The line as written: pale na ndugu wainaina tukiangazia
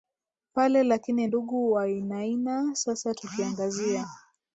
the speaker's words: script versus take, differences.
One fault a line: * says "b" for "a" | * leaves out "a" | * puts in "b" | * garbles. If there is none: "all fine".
* says "lakini" for "na"
* puts in "sasa"